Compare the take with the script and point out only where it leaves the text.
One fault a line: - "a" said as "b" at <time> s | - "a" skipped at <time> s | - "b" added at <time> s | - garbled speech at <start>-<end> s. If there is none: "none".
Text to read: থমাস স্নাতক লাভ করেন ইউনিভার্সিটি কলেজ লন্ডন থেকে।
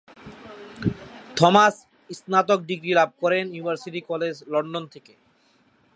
- "ডিগ্রি" added at 2.7 s